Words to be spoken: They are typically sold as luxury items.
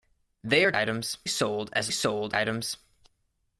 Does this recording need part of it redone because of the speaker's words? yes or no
yes